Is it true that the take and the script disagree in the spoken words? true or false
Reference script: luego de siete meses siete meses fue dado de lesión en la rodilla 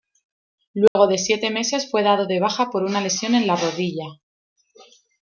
true